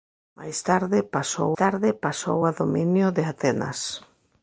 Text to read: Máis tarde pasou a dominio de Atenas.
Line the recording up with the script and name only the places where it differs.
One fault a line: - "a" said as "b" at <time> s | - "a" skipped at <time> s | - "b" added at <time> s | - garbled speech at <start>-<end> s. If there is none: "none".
- "tarde pasou" added at 1.6 s